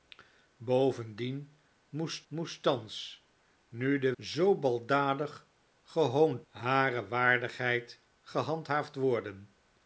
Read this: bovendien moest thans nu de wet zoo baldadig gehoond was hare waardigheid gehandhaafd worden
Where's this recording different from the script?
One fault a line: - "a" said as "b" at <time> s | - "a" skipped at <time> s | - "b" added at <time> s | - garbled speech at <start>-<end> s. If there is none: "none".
- "moest" added at 2.3 s
- "wet" skipped at 4.1 s
- "was" skipped at 6.5 s